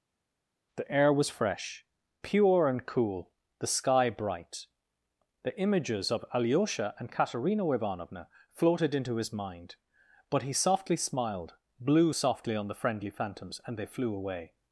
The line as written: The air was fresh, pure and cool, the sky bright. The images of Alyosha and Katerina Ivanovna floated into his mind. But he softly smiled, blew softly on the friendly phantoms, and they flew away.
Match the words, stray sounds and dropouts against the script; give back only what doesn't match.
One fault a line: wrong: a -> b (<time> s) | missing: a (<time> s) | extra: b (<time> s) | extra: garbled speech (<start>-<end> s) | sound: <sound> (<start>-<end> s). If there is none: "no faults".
no faults